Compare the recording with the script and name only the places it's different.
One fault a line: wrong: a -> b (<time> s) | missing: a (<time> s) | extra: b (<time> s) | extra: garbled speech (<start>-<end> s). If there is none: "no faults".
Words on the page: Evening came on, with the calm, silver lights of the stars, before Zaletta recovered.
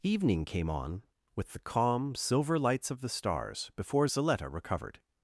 no faults